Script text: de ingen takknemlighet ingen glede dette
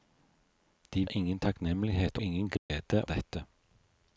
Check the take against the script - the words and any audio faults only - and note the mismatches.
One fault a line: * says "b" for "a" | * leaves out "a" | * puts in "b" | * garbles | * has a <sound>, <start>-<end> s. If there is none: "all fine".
* has a dropout, 2.6-2.7 s